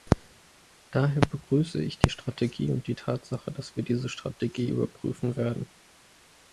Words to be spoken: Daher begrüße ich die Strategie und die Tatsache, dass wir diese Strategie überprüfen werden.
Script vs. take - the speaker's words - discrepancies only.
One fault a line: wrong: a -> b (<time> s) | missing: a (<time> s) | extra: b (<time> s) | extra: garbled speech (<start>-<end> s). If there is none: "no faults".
no faults